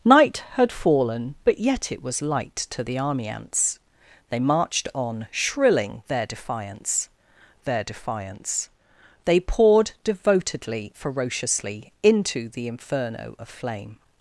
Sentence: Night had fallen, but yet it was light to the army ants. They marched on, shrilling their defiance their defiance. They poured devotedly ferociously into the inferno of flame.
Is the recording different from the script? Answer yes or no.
no